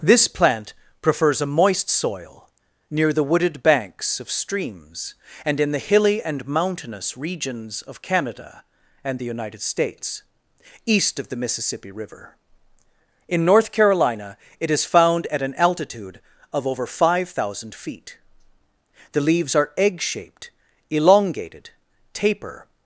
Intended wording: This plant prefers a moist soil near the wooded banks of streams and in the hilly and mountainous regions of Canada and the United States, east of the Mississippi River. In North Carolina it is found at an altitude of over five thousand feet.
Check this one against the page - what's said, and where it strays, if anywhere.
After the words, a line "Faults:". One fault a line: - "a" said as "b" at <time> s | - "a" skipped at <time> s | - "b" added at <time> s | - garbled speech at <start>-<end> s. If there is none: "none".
This plant prefers a moist soil near the wooded banks of streams and in the hilly and mountainous regions of Canada and the United States, east of the Mississippi River. In North Carolina it is found at an altitude of over five thousand feet. The leaves are egg shaped, elongated, taper
Faults:
- "The leaves are egg shaped elongated taper" added at 19.1 s